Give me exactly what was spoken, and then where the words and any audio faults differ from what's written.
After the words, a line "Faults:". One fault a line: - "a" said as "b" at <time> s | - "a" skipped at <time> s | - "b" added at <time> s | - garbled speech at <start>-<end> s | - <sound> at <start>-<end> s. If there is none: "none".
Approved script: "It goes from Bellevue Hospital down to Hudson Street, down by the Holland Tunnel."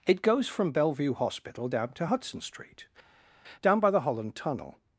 "It goes from Bellevue Hospital down to Hudson Street, down by the Holland Tunnel."
Faults:
none